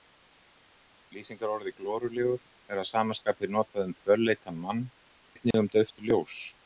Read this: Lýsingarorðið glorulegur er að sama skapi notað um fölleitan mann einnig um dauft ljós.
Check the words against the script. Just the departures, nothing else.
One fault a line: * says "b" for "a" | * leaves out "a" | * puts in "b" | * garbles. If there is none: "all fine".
all fine